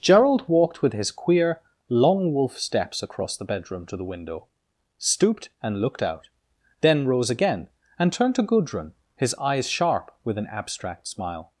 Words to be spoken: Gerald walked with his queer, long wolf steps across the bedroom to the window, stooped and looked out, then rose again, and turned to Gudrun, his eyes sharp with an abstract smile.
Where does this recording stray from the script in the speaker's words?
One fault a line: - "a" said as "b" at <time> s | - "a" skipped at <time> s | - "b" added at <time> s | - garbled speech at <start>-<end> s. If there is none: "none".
none